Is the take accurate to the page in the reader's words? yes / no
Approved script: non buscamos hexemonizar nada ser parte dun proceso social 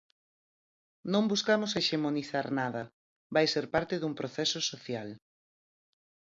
no